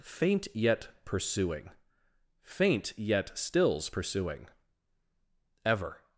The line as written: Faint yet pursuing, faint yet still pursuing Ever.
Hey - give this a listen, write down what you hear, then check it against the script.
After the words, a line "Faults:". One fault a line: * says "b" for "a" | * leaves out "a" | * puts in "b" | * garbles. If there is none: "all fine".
Faint yet pursuing, faint yet stills pursuing Ever.
Faults:
* says "stills" for "still"